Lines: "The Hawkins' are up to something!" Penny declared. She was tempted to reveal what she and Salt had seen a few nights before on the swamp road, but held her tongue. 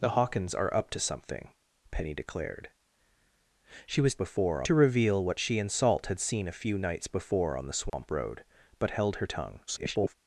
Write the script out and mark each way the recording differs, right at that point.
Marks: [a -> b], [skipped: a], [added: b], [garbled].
"The Hawkins' are up to something!" Penny declared. She was [tempted -> before] to reveal what she and Salt had seen a few nights before on the swamp road, but held her tongue. [garbled]